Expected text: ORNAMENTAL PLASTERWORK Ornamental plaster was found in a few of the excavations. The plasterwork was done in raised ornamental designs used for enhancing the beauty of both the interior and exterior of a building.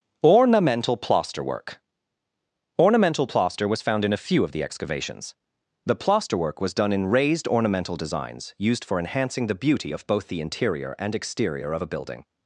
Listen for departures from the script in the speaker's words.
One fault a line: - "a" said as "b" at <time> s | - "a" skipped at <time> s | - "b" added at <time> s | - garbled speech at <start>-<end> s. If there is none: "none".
none